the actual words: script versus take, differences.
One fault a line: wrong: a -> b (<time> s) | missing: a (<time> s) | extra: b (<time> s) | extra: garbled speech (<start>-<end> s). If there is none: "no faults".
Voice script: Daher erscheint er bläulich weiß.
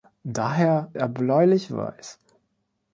missing: erscheint (0.9 s)